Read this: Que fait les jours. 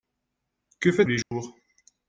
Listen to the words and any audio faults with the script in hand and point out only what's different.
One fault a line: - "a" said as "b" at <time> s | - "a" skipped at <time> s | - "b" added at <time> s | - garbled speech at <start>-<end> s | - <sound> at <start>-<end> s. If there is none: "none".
- dropout at 1.2-1.3 s